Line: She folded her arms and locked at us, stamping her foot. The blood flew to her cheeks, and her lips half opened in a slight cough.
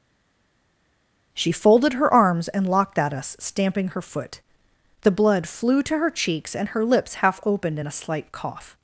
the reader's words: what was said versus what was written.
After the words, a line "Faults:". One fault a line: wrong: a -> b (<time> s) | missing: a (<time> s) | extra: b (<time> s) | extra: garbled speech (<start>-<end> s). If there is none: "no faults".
She folded her arms and locked at us, stamping her foot. The blood flew to her cheeks, and her lips half opened in a slight cough.
Faults:
no faults